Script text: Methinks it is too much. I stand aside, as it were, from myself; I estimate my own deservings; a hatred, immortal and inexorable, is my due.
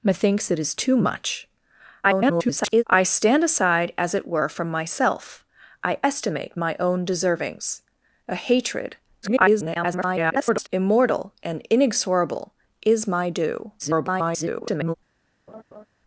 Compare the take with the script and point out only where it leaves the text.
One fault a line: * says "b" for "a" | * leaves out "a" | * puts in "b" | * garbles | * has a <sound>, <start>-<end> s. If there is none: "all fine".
* garbles
* garbles
* garbles
* has a laugh, 15.5-15.9 s